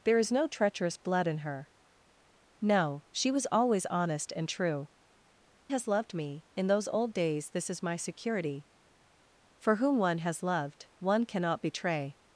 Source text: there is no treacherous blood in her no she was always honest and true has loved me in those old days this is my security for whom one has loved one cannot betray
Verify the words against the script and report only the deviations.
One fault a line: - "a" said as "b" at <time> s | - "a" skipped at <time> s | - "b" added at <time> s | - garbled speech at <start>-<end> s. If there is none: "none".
none